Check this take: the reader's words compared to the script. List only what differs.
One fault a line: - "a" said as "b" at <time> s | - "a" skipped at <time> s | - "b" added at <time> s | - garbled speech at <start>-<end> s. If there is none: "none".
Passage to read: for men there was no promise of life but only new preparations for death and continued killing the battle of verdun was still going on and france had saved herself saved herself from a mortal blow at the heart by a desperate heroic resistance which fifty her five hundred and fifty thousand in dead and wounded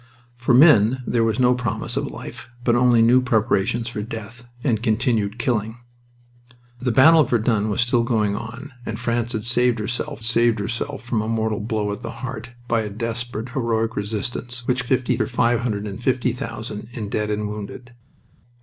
none